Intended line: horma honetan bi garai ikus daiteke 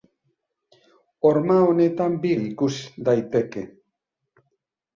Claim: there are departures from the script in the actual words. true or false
true